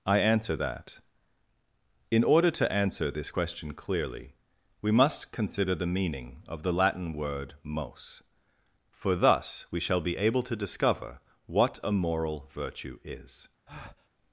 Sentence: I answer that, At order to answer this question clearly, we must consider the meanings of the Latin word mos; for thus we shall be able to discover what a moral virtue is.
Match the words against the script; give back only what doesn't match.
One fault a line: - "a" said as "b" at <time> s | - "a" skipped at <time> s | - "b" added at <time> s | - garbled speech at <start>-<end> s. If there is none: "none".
- "At" said as "In" at 2.1 s
- "meanings" said as "meaning" at 5.9 s